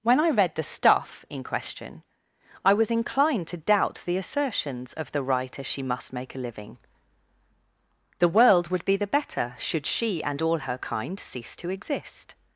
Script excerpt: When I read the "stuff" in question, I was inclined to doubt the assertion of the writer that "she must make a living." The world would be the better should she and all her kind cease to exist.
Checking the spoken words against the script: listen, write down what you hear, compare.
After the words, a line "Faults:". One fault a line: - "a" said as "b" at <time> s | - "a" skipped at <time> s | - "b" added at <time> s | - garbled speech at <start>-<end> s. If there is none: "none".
When I read the "stuff" in question, I was inclined to doubt the assertions of the writer "she must make a living." The world would be the better should she and all her kind cease to exist.
Faults:
- "assertion" said as "assertions" at 4.2 s
- "that" skipped at 5.6 s